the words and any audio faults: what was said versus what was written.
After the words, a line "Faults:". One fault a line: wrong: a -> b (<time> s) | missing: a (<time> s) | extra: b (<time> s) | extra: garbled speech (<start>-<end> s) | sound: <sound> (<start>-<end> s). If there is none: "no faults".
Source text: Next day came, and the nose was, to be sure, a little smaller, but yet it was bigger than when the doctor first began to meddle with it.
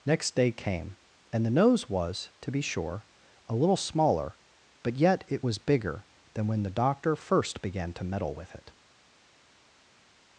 Next day came, and the nose was, to be sure, a little smaller, but yet it was bigger than when the doctor first began to meddle with it.
Faults:
no faults